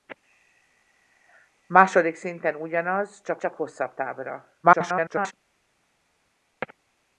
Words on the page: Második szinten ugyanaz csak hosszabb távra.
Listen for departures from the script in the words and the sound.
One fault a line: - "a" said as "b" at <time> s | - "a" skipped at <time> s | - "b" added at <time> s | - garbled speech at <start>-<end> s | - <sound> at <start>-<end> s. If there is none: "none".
- "csak" added at 3.4 s
- garbled speech at 4.6-5.3 s